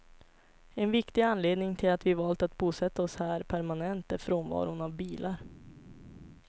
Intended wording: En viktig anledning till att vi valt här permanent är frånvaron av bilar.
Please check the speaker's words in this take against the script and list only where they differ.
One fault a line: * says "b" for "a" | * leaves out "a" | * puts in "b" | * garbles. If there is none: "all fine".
* puts in "att bosätta oss"